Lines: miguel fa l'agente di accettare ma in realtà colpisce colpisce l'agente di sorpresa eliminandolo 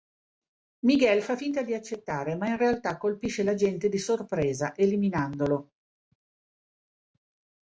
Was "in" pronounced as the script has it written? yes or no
yes